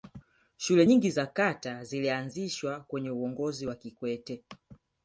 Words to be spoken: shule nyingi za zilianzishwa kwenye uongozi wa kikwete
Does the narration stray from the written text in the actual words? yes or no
yes